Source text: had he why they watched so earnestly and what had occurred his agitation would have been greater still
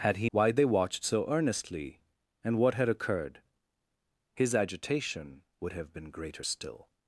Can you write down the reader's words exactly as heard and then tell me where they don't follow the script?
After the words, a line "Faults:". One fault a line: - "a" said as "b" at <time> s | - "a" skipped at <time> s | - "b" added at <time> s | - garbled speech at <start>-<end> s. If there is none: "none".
had he why they watched so earnestly and what had occurred his agitation would have been greater still
Faults:
none